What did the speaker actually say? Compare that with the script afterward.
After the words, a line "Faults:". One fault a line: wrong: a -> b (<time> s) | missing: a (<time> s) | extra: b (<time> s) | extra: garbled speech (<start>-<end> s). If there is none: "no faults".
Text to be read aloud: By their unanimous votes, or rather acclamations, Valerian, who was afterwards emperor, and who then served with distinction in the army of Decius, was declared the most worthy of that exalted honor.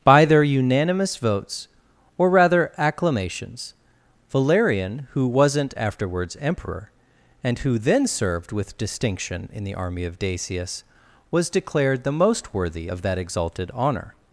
By their unanimous votes, or rather acclamations, Valerian, who wasn't afterwards emperor, and who then served with distinction in the army of Decius, was declared the most worthy of that exalted honor.
Faults:
wrong: was -> wasn't (5.3 s)